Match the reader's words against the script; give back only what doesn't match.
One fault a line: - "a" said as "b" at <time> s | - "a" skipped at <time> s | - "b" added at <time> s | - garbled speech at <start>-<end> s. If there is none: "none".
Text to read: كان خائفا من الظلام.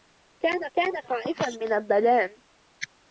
- "كان" added at 0.7 s